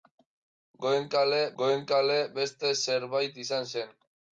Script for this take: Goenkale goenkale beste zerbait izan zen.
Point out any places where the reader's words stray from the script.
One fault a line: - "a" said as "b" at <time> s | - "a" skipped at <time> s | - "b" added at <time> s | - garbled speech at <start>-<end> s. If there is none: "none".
none